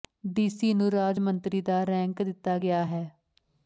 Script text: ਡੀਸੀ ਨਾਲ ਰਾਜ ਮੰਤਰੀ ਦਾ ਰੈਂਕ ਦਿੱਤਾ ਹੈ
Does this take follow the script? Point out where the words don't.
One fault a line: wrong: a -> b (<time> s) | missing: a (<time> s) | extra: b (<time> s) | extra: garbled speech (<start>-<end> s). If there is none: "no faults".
wrong: ਨਾਲ -> ਨੂੰ (0.7 s)
extra: ਗਿਆ (2.6 s)